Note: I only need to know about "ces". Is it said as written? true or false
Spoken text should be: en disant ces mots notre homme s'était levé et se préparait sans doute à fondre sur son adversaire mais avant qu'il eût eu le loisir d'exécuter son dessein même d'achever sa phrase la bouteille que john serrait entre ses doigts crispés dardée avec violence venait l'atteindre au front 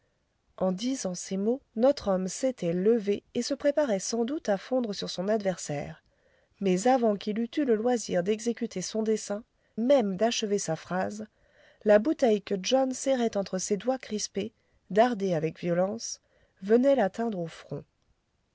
true